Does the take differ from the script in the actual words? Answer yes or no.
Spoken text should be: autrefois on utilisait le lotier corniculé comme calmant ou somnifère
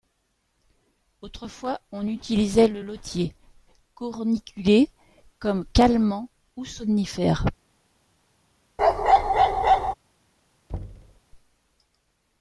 no